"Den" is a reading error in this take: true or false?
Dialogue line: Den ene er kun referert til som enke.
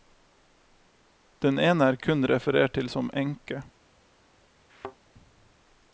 false